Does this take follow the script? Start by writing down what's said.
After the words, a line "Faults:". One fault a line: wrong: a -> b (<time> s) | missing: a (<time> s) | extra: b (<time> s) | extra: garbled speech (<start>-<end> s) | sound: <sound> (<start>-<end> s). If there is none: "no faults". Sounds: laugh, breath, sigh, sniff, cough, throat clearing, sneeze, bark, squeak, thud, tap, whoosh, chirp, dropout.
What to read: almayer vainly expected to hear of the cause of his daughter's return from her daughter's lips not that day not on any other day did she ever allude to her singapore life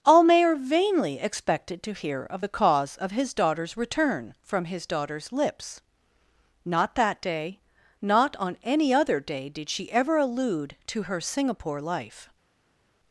almayer vainly expected to hear of the cause of his daughter's return from his daughter's lips not that day not on any other day did she ever allude to her singapore life
Faults:
wrong: her -> his (4.7 s)